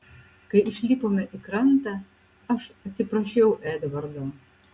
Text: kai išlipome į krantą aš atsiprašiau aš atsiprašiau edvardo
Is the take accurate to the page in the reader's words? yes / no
no